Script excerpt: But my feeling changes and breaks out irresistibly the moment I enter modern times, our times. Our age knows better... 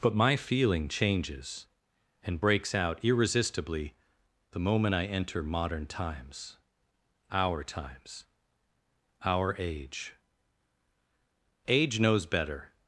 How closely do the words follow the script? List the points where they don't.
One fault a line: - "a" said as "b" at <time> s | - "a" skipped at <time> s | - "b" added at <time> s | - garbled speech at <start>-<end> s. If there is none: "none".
- "age" added at 11.7 s